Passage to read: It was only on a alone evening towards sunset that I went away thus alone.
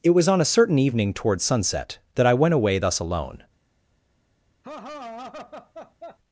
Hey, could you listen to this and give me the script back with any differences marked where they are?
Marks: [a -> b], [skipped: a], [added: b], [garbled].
It was [skipped: only] on a [alone -> certain] evening towards sunset that I went away thus alone.